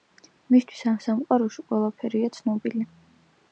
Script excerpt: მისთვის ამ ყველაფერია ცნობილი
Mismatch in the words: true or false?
true